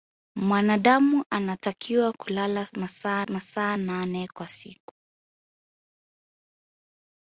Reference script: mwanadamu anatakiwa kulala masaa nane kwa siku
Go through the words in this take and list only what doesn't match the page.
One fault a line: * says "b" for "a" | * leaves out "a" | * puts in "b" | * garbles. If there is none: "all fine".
* puts in "masaa"